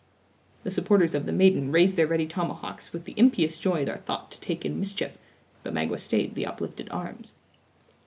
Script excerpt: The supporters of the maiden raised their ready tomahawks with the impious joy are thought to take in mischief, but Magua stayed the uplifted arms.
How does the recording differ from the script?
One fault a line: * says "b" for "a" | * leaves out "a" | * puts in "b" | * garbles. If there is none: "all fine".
all fine